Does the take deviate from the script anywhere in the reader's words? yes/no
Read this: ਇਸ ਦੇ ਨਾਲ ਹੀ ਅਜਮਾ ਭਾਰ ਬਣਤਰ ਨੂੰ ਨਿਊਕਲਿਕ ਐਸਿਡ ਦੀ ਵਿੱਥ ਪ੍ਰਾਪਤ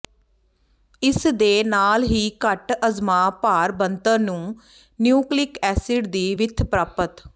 yes